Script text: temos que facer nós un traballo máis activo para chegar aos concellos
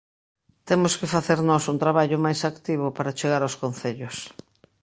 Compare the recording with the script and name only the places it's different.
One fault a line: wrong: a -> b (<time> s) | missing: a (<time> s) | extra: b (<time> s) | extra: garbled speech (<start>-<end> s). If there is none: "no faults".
no faults